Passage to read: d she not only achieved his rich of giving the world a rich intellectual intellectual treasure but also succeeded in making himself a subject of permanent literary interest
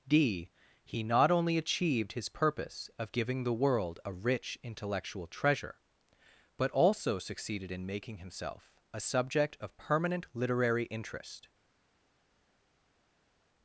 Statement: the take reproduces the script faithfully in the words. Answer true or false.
false